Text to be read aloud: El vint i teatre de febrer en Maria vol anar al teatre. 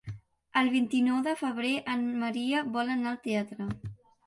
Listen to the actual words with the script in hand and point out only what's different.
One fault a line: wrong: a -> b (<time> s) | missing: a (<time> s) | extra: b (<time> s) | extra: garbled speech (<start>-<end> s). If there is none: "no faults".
wrong: teatre -> nou (1.1 s)